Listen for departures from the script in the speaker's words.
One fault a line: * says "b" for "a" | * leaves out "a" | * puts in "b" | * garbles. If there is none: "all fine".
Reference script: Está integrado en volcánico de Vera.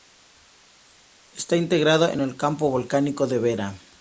* puts in "el campo"